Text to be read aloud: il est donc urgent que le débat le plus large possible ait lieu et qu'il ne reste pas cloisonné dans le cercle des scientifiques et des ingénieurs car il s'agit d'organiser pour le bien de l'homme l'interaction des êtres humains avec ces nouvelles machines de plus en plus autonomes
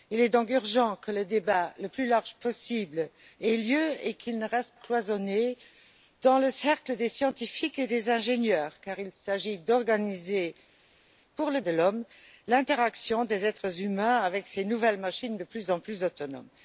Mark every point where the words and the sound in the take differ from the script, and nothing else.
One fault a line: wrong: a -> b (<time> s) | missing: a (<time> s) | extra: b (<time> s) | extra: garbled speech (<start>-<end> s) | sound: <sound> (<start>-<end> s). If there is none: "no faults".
missing: pas (4.8 s)
missing: bien (11.6 s)